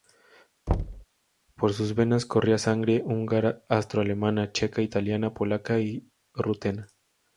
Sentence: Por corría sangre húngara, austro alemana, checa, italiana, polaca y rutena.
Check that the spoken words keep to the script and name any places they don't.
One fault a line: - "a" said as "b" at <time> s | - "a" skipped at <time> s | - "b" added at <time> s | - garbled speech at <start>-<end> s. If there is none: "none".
- "sus venas" added at 1.7 s